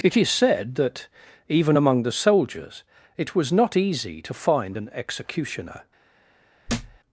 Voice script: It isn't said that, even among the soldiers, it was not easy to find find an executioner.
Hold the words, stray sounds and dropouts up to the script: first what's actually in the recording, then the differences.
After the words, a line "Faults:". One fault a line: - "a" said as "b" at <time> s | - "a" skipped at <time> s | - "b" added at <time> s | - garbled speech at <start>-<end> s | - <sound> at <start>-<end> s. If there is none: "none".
It is said that, even among the soldiers, it was not easy to find an executioner.
Faults:
- "isn't" said as "is" at 0.2 s
- "find" skipped at 4.8 s
- thud at 6.7-7.0 s